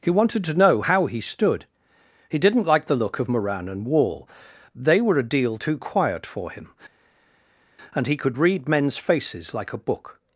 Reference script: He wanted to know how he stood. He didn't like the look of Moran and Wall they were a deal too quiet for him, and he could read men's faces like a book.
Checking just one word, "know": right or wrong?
right